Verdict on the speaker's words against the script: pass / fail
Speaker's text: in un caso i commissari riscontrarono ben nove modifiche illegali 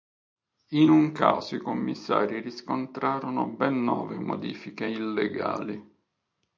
pass